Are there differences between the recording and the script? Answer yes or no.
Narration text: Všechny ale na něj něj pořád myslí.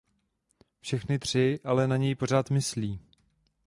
yes